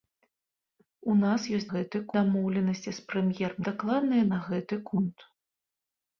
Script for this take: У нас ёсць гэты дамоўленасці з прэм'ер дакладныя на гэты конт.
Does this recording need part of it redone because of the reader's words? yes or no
no